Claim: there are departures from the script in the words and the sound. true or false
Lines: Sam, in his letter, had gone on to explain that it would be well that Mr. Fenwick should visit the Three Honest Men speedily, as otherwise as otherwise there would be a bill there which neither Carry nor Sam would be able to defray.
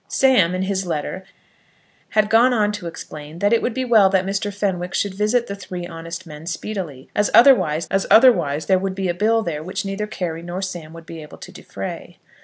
false